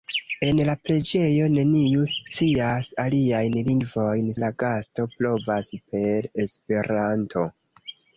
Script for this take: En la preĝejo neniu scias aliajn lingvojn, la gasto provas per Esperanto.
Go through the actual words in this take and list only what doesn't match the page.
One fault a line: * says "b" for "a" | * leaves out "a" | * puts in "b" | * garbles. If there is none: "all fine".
all fine